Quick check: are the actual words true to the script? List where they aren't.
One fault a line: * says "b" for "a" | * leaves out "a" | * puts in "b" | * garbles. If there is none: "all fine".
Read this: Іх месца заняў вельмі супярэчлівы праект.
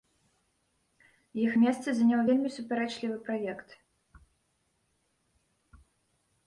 all fine